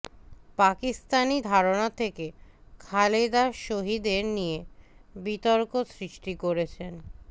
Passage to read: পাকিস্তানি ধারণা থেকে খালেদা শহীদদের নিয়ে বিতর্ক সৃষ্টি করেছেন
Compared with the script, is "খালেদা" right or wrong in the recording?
right